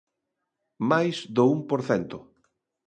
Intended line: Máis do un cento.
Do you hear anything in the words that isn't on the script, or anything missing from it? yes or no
yes